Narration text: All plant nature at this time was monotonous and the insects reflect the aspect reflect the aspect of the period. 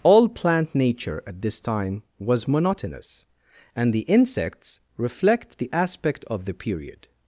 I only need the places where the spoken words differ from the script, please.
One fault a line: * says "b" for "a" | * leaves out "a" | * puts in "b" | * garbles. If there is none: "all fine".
* leaves out "reflect the aspect"